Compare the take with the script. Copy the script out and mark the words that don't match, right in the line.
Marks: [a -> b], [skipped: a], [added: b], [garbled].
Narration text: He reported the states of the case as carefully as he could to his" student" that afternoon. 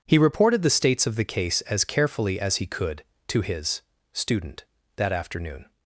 He reported the states of the case as carefully as he could to his" student" that afternoon.